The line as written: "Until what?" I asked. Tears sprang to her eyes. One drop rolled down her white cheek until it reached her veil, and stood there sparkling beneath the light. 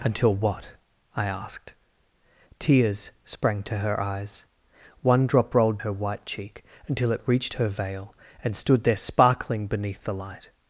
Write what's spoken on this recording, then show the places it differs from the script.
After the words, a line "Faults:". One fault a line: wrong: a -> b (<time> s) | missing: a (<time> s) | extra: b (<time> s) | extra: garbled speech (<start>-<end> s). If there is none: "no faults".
"Until what?" I asked. Tears sprang to her eyes. One drop rolled her white cheek until it reached her veil, and stood there sparkling beneath the light.
Faults:
missing: down (5.8 s)